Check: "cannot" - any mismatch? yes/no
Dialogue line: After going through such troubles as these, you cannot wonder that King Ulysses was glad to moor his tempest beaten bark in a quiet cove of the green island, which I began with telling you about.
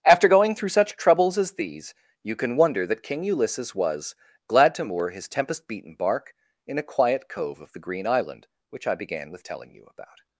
yes